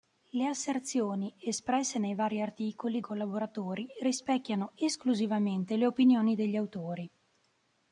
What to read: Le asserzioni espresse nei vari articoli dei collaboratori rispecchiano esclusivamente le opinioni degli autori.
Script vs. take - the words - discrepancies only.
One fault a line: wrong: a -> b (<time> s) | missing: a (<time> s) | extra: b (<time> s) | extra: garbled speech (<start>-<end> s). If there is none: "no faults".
missing: dei (3.0 s)